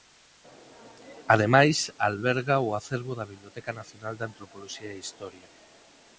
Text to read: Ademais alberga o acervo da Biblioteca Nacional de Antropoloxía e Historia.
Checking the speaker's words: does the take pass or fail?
pass